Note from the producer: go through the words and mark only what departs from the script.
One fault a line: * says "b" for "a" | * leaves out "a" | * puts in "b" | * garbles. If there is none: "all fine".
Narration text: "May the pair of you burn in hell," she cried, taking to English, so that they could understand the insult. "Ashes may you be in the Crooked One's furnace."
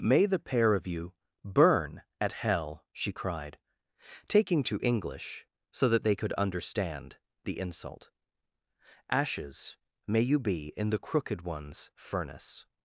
* says "at" for "in"